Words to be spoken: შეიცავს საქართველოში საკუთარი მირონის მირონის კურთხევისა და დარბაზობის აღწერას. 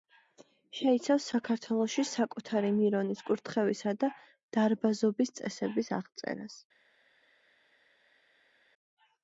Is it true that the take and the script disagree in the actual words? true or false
true